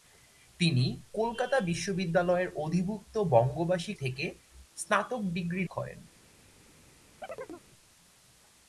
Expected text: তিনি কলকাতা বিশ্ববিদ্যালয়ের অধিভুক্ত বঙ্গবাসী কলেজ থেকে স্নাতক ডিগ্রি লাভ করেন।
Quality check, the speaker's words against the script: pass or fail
fail